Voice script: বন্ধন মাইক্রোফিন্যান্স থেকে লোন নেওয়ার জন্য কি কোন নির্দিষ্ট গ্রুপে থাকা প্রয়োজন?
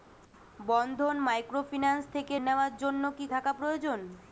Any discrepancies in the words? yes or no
yes